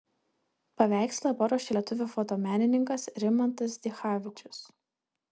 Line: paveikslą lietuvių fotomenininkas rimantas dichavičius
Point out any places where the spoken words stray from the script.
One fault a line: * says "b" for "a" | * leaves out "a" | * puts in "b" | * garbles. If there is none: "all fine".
* puts in "paruošė"